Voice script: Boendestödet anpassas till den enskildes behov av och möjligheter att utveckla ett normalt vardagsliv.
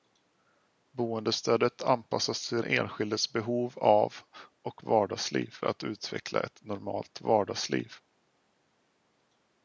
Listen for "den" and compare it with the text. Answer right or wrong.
wrong